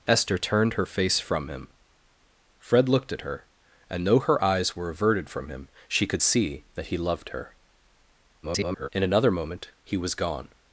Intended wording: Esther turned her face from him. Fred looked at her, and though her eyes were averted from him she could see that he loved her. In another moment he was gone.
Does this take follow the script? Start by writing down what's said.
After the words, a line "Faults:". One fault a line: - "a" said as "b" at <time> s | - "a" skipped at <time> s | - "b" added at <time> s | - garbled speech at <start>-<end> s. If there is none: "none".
Esther turned her face from him. Fred looked at her, and though her eyes were averted from him she could see that he loved her. [garbled] In another moment he was gone.
Faults:
- garbled speech at 8.4-8.9 s